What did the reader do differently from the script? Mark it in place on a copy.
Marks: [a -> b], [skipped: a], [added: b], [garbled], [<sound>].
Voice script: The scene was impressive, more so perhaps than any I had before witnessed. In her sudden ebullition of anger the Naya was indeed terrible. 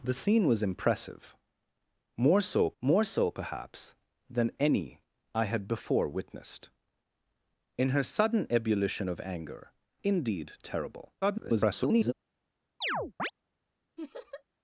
The scene was impressive, more so [added: more so] perhaps than any I had before witnessed. In her sudden ebullition of anger [skipped: the Naya was] indeed terrible. [garbled] [chirp] [laugh]